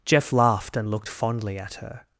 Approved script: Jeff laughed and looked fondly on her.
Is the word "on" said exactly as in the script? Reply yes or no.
no